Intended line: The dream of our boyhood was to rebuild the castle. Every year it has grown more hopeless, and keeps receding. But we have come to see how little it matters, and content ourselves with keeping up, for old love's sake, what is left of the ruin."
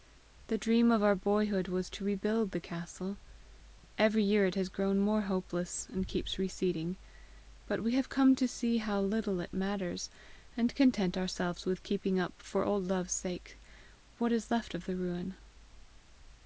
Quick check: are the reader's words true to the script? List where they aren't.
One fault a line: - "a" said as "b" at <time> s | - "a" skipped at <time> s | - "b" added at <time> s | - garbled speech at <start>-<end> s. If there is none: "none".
none